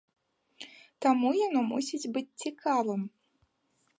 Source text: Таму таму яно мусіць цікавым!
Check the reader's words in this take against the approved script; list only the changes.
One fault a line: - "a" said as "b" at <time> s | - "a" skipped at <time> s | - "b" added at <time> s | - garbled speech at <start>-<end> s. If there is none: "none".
- "таму" skipped at 1.3 s
- "быць" added at 2.1 s